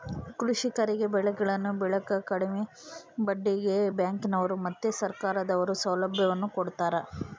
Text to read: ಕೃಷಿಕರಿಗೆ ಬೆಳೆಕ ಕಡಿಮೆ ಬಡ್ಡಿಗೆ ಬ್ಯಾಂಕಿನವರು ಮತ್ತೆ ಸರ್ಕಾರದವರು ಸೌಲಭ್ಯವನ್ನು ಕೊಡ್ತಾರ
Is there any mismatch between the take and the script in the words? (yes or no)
yes